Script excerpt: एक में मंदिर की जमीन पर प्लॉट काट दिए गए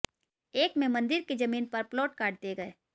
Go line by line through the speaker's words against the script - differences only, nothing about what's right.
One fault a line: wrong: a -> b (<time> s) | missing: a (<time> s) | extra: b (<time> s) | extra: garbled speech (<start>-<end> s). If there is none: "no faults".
no faults